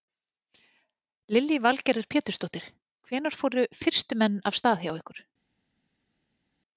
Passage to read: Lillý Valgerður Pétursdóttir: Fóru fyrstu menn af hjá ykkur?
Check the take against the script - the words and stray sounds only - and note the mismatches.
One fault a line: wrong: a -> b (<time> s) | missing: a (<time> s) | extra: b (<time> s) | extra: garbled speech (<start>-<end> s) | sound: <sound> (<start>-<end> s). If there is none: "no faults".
extra: Hvenær (3.1 s)
extra: stað (4.6 s)